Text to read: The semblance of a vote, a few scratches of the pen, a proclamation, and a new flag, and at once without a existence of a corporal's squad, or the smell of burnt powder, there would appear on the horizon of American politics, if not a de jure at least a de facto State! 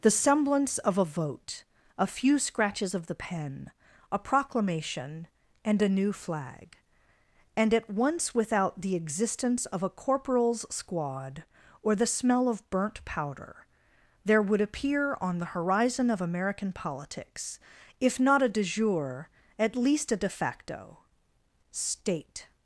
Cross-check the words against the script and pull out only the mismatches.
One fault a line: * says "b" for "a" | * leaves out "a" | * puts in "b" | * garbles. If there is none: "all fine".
* says "the" for "a"